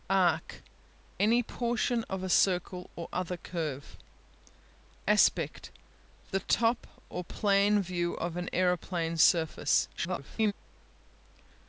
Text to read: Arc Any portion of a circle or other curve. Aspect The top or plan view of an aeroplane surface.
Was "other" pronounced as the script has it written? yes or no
yes